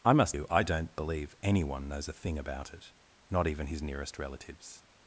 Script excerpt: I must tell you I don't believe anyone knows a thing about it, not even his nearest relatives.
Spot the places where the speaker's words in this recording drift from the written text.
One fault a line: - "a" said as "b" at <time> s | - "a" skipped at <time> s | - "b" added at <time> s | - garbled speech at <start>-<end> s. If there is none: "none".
- "tell" skipped at 0.3 s